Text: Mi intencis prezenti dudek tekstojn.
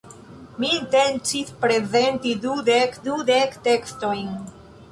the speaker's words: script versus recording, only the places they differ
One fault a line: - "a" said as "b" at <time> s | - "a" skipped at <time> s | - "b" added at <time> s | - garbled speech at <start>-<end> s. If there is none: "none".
- "dudek" added at 3.1 s